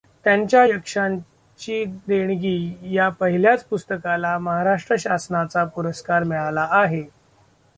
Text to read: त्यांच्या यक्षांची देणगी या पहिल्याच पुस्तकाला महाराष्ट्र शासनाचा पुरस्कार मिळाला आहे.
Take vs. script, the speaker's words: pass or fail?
pass